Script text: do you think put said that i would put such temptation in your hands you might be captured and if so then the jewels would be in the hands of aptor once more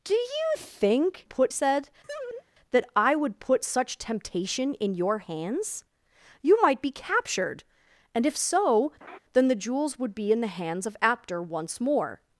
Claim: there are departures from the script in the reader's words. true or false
false